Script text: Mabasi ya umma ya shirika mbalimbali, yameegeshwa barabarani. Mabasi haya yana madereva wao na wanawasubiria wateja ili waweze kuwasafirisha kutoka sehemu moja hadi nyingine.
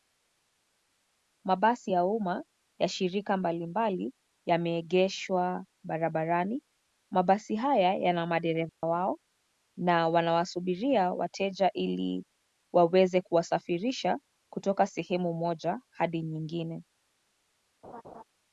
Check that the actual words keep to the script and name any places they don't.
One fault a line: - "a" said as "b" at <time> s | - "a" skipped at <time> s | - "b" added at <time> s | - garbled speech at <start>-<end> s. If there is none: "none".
none